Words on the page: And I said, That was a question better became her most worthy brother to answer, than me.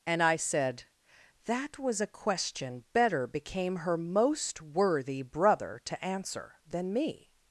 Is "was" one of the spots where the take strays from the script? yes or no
no